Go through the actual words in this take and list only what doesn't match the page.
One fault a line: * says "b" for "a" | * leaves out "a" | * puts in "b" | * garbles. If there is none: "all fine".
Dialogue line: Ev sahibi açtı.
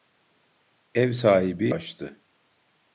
all fine